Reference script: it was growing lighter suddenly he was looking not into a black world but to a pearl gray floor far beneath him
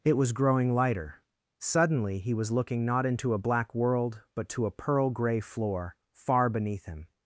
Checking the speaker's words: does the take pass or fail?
pass